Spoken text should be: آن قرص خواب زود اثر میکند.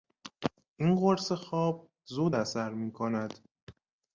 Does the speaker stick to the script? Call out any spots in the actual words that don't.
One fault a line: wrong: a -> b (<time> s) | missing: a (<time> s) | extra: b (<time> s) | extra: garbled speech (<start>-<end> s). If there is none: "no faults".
wrong: آن -> این (0.8 s)